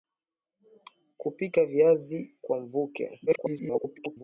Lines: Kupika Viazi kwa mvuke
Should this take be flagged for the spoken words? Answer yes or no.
yes